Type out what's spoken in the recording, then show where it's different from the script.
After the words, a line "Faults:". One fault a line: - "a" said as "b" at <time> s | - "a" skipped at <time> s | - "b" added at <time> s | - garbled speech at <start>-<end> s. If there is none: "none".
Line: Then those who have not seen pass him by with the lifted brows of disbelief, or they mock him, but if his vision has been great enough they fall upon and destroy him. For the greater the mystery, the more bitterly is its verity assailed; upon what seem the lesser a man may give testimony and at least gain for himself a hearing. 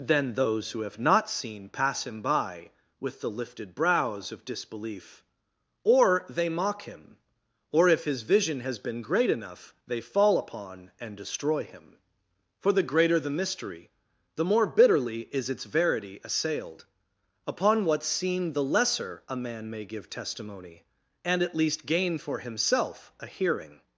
Then those who have not seen pass him by with the lifted brows of disbelief, or they mock him, or if his vision has been great enough they fall upon and destroy him. For the greater the mystery, the more bitterly is its verity assailed; upon what seem the lesser a man may give testimony and at least gain for himself a hearing.
Faults:
- "but" said as "or" at 7.7 s